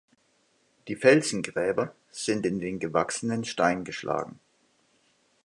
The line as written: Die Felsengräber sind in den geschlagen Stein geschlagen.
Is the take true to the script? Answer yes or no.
no